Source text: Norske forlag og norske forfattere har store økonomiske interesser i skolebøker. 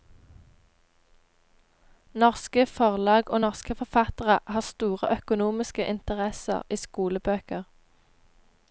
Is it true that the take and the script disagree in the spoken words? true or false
false